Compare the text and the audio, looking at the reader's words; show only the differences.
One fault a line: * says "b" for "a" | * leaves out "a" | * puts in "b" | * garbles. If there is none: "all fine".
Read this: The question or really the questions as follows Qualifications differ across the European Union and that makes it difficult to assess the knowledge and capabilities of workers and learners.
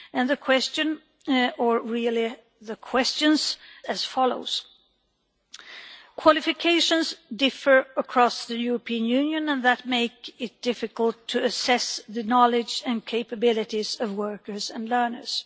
all fine